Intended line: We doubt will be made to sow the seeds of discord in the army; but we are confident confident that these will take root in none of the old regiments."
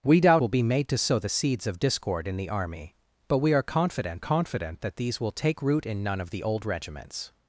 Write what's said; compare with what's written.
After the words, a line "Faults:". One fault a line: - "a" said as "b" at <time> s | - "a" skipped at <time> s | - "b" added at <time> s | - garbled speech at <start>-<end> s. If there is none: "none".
We doubt will be made to sow the seeds of discord in the army; but we are confident confident that these will take root in none of the old regiments."
Faults:
none